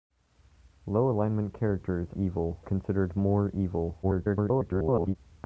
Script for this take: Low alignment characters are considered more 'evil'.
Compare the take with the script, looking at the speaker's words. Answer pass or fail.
fail